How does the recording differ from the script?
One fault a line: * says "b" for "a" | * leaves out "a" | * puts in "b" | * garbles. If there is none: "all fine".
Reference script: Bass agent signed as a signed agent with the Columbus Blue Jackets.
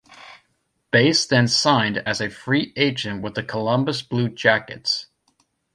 * says "then" for "agent"
* says "free" for "signed"